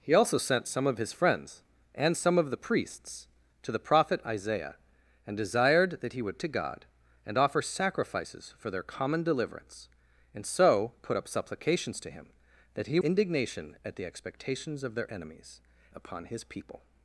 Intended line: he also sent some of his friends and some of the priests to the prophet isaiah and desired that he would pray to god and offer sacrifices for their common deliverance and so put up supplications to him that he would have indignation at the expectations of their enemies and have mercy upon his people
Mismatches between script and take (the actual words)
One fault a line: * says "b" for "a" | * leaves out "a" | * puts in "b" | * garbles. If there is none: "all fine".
* leaves out "pray"
* leaves out "would have"
* leaves out "and have mercy"